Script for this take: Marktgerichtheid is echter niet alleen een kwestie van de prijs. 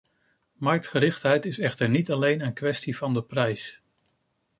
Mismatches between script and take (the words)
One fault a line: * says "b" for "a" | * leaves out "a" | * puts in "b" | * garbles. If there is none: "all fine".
all fine